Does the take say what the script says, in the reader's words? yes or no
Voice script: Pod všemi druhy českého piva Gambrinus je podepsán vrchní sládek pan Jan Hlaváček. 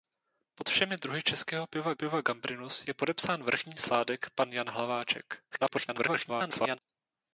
no